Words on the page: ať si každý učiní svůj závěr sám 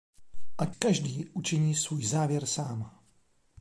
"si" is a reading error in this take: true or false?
true